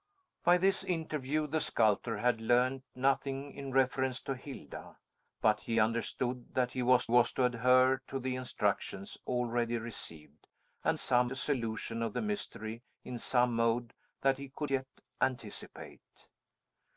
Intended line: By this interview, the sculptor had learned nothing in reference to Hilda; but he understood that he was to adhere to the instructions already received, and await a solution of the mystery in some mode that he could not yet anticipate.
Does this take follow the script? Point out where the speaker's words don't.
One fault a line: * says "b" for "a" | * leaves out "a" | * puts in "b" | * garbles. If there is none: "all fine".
* puts in "was"
* says "some" for "await"
* leaves out "not"